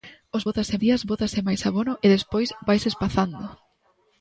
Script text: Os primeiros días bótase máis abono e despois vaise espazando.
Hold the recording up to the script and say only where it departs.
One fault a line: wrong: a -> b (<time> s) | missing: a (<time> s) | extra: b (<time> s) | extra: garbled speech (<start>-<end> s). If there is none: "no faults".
wrong: primeiros -> bótase (0.5 s)